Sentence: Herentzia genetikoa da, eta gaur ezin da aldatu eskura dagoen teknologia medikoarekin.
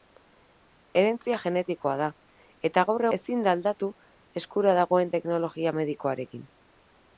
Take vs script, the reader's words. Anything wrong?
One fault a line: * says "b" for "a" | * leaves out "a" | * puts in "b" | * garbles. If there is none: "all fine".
all fine